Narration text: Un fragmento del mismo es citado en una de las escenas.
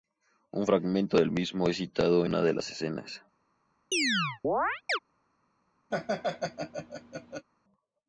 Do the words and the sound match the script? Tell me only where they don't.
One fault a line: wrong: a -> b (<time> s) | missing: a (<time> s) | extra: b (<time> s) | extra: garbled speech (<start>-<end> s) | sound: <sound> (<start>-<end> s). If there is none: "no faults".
missing: en (2.2 s)
sound: chirp (3.9-5.0 s)
sound: laugh (5.9-7.5 s)